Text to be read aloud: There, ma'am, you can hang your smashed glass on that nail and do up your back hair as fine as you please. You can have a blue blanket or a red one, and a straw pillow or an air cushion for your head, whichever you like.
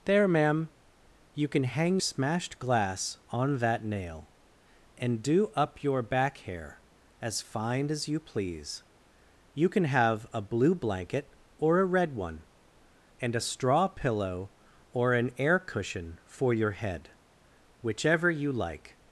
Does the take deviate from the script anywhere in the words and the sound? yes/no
yes